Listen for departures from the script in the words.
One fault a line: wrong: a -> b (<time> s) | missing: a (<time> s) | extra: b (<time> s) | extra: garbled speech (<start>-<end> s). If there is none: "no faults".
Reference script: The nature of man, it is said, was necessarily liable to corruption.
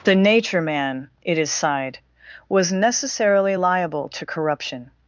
missing: of (0.6 s)
wrong: said -> sighed (1.5 s)